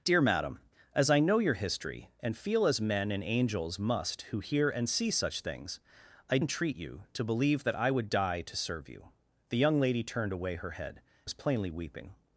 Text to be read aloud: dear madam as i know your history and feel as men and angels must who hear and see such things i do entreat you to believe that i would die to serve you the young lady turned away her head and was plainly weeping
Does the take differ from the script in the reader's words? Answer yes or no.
yes